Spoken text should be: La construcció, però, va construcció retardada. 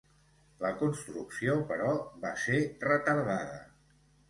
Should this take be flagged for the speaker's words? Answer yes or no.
yes